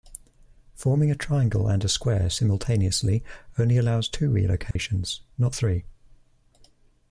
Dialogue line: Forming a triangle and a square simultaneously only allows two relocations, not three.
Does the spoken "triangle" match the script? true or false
true